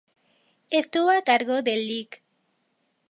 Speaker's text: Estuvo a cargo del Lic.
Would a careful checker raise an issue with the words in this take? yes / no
no